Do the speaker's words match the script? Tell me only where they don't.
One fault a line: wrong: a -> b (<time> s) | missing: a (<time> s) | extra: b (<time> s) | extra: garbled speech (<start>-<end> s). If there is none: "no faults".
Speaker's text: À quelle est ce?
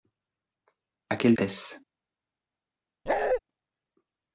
no faults